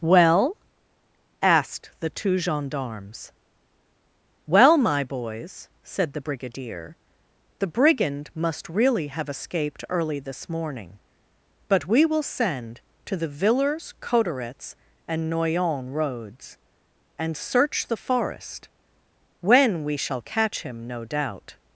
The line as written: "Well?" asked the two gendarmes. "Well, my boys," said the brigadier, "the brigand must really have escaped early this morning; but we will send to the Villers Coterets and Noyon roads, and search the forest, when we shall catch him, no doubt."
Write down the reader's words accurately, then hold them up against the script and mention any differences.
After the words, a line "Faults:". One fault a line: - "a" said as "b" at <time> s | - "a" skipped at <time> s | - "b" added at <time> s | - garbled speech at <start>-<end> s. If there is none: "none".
"Well?" asked the two gendarmes. "Well, my boys," said the brigadier, "the brigand must really have escaped early this morning; but we will send to the Villers Coterets and Noyon roads, and search the forest, when we shall catch him, no doubt."
Faults:
none